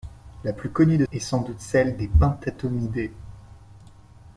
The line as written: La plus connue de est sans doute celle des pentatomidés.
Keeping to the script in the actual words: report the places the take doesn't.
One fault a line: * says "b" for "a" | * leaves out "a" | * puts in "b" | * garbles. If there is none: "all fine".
all fine